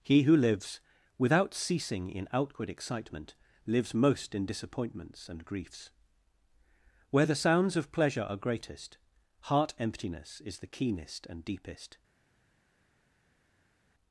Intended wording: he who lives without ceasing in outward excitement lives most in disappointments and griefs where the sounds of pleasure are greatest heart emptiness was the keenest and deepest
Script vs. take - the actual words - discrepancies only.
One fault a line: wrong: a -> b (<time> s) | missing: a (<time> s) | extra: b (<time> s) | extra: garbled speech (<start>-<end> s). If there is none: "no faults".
wrong: was -> is (10.4 s)